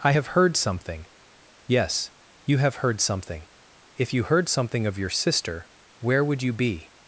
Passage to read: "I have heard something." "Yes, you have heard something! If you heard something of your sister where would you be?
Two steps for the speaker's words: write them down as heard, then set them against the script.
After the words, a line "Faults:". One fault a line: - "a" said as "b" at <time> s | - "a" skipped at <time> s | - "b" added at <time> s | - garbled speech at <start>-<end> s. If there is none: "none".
"I have heard something." "Yes, you have heard something! If you heard something of your sister where would you be?
Faults:
none